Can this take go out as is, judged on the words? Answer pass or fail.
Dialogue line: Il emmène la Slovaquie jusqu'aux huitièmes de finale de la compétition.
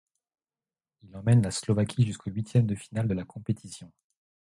pass